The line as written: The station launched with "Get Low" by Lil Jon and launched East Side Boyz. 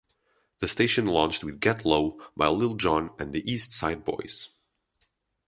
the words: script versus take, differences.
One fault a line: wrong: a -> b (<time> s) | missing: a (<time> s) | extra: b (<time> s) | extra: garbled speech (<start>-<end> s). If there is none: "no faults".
wrong: launched -> the (3.3 s)